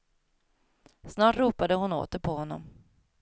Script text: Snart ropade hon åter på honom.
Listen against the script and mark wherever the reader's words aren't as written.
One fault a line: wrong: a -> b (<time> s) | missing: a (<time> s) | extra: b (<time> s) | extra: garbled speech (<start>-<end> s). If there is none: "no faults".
no faults